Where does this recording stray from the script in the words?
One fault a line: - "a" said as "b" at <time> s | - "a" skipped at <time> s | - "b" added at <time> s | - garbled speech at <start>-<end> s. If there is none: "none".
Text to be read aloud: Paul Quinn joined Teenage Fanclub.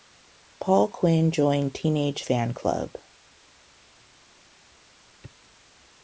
none